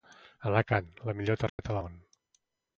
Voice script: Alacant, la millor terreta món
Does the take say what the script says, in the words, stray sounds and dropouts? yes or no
no